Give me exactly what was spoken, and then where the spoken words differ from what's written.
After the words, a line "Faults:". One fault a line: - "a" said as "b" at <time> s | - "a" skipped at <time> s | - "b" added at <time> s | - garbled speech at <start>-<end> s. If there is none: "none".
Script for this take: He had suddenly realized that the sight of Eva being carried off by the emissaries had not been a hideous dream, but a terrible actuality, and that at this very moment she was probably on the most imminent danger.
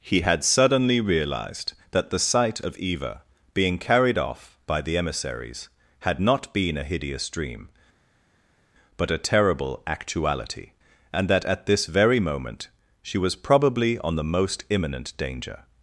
He had suddenly realized that the sight of Eva being carried off by the emissaries had not been a hideous dream, but a terrible actuality, and that at this very moment she was probably on the most imminent danger.
Faults:
none